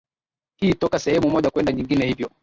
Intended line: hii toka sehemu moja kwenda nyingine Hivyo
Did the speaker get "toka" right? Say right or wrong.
right